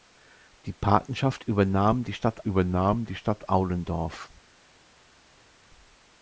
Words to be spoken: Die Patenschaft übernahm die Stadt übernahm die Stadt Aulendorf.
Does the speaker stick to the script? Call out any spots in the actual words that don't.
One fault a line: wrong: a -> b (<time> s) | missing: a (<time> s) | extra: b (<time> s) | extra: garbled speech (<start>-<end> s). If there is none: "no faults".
no faults